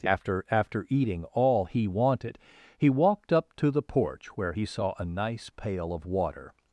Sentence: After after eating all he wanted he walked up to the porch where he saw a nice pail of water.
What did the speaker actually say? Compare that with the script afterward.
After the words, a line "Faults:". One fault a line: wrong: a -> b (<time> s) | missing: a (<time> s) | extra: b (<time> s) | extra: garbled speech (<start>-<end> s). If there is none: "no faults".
After after eating all he wanted he walked up to the porch where he saw a nice pail of water.
Faults:
no faults